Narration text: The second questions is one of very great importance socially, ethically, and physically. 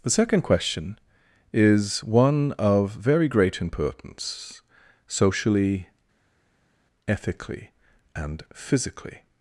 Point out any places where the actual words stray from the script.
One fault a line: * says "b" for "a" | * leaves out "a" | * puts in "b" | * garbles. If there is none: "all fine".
* says "question" for "questions"